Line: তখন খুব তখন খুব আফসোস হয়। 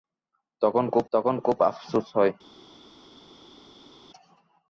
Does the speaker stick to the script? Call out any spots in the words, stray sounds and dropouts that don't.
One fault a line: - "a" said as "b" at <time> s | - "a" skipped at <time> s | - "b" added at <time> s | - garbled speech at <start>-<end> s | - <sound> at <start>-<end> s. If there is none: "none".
none